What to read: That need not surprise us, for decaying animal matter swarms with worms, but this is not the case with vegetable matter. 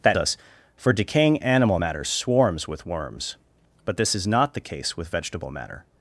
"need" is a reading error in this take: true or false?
true